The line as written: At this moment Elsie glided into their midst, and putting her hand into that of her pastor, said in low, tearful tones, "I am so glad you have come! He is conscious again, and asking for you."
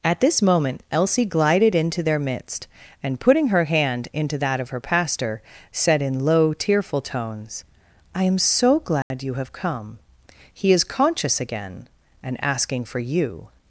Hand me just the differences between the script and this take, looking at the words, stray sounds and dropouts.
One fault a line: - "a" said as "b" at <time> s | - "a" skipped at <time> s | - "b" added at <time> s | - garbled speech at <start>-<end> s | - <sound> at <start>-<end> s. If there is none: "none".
- dropout at 9.0-9.1 s